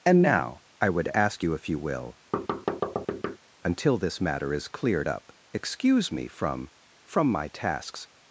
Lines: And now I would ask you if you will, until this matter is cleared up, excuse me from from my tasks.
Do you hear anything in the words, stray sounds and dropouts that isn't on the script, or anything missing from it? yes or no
yes